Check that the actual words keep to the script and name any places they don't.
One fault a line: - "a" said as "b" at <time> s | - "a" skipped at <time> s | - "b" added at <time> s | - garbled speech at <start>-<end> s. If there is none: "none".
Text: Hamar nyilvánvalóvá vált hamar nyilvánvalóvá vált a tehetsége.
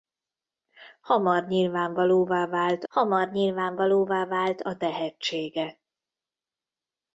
none